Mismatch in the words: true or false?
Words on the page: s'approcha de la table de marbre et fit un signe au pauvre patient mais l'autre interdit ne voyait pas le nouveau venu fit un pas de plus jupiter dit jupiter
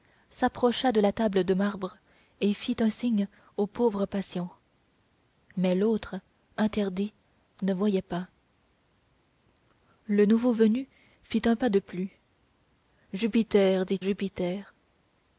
false